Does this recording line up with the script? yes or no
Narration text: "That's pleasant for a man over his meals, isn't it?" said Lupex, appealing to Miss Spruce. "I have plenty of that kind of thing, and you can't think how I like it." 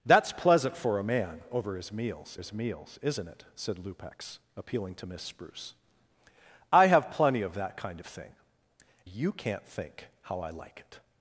no